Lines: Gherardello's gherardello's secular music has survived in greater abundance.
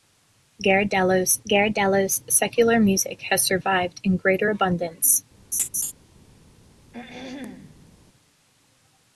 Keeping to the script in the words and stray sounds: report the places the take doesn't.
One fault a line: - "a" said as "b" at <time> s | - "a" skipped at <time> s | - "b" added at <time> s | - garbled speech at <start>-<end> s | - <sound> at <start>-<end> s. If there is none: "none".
- laugh at 5.5-5.9 s
- throat clearing at 6.9-8.0 s